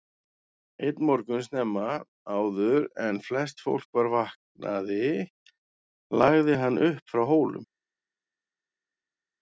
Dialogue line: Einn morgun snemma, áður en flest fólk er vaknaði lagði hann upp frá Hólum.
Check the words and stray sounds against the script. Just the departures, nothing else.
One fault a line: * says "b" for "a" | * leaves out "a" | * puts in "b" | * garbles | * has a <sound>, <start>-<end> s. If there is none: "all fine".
* says "var" for "er"